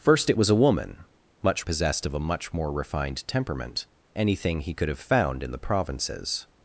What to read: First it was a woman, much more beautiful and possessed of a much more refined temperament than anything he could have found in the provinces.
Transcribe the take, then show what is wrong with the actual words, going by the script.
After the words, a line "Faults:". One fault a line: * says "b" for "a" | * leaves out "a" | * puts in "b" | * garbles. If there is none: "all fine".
First it was a woman, much possessed of a much more refined temperament anything he could have found in the provinces.
Faults:
* leaves out "more beautiful and"
* leaves out "than"